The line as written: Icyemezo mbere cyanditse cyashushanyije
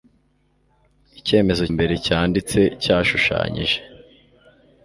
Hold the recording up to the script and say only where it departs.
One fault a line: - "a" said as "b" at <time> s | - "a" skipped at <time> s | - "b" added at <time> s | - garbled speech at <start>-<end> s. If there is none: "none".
none